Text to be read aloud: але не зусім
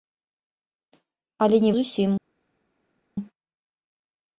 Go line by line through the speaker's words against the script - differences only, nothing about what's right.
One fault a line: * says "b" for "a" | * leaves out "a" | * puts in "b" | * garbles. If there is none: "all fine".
all fine